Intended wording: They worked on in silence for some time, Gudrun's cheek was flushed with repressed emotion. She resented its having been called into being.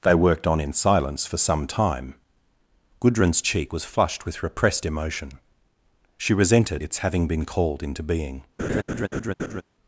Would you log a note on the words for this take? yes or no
no